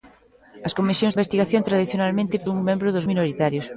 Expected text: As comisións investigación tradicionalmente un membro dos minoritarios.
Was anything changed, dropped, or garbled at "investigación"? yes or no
no